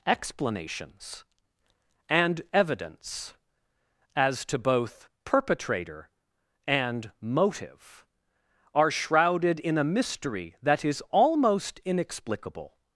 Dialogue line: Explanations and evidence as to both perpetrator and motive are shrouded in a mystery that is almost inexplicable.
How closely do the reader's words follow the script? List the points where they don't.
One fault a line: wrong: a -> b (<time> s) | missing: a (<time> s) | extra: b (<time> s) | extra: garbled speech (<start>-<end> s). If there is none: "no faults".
no faults